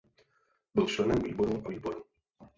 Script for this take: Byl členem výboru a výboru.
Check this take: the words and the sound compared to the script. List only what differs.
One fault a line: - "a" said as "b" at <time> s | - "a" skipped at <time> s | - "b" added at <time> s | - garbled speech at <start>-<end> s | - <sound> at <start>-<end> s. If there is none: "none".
none